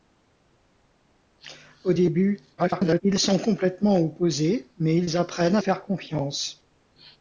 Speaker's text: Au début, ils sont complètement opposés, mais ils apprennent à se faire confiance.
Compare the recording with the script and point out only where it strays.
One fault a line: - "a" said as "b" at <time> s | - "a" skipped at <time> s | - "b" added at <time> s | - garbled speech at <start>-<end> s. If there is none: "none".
- garbled speech at 2.6-3.0 s
- "se" skipped at 5.6 s